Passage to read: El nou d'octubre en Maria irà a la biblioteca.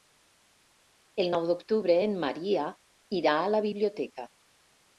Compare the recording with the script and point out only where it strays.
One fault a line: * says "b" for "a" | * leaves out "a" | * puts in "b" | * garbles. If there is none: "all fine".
all fine